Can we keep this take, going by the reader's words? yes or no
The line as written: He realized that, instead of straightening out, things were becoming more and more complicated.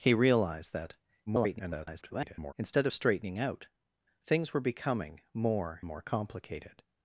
no